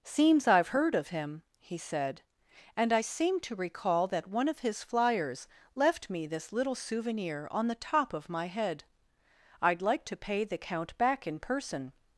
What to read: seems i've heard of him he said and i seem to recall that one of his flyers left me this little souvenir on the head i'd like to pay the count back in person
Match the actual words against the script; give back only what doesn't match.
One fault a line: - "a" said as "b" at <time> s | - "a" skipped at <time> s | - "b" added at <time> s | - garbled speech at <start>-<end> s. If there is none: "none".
- "top of my" added at 7.8 s